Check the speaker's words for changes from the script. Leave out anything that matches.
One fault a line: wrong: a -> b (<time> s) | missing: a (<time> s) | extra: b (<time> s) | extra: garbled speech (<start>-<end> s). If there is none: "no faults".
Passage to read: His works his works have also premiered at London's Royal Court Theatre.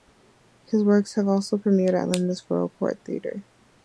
missing: his works (1.1 s)